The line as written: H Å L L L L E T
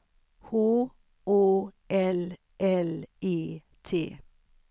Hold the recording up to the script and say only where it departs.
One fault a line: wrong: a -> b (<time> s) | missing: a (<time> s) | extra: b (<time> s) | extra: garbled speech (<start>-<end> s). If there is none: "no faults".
missing: L L (3.1 s)